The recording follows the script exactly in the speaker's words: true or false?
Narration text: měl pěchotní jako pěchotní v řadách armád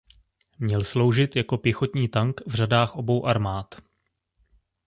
false